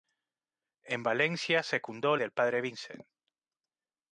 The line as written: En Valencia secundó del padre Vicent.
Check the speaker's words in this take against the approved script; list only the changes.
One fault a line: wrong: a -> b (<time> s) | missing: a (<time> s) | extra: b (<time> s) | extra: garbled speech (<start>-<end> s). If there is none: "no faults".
no faults